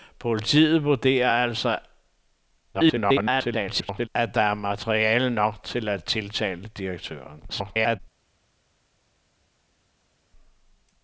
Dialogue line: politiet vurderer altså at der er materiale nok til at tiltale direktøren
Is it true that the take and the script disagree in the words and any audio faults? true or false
true